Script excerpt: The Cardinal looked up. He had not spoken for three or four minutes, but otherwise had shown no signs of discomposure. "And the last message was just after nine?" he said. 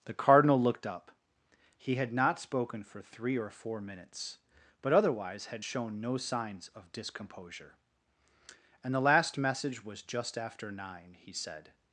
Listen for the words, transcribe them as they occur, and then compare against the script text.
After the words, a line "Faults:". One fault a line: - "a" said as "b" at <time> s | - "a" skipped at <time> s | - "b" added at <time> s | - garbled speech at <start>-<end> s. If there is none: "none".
The Cardinal looked up. He had not spoken for three or four minutes, but otherwise had shown no signs of discomposure. "And the last message was just after nine?" he said.
Faults:
none